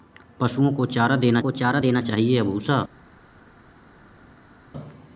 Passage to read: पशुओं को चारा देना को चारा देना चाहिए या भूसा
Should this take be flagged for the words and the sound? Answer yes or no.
no